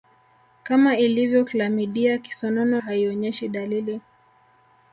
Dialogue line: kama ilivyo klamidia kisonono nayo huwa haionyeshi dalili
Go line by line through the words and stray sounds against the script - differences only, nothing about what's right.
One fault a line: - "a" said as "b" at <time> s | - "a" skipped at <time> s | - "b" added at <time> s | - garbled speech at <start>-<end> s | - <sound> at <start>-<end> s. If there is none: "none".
- "nayo huwa" skipped at 2.8 s